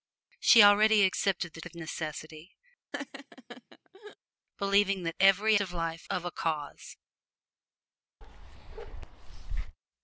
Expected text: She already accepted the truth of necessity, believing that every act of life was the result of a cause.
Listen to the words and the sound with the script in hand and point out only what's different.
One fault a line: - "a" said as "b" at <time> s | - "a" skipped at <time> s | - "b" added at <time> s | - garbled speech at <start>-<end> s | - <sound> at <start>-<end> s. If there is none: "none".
- "truth" skipped at 1.6 s
- laugh at 2.9-4.2 s
- "act" skipped at 5.6 s
- "was the result" skipped at 6.1 s
- bark at 8.2-9.8 s